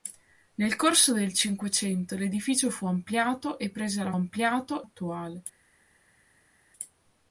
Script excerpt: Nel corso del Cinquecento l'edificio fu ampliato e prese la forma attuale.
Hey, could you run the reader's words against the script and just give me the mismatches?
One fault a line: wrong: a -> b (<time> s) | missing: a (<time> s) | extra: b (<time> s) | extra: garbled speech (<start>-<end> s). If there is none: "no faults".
wrong: forma -> ampliato (4.1 s)